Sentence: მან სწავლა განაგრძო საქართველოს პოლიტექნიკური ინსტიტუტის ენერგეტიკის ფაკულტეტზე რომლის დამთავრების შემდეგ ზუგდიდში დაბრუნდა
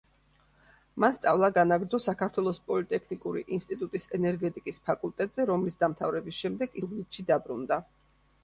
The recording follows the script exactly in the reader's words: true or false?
true